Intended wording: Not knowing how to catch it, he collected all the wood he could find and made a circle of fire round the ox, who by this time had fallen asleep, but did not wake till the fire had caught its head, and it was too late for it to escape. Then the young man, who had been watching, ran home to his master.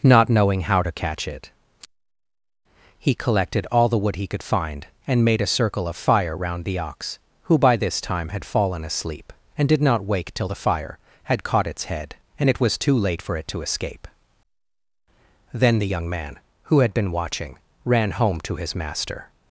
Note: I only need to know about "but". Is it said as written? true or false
false